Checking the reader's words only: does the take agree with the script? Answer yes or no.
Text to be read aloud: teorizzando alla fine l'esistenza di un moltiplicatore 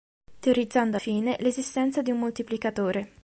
no